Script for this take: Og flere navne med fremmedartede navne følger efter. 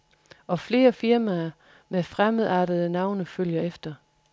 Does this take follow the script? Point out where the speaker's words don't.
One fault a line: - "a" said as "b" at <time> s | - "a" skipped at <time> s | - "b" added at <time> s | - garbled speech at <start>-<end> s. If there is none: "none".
- "navne" said as "firmaer" at 0.9 s